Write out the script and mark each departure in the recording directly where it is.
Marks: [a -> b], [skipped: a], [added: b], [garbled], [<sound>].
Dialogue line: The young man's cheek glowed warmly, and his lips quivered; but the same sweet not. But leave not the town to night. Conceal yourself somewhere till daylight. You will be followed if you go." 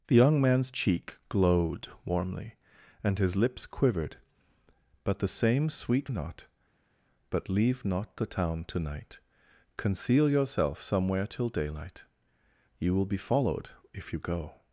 The young man's cheek glowed warmly, and his lips quivered; but the same sweet not. But leave not the town to night. Conceal yourself somewhere till daylight. You will be followed if you go."